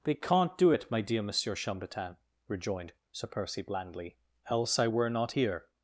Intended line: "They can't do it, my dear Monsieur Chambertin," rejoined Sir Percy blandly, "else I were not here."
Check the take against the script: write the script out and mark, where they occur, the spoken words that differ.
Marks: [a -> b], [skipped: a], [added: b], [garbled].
"They can't do it, my dear Monsieur Chambertin," rejoined Sir Percy blandly, "else I were not here."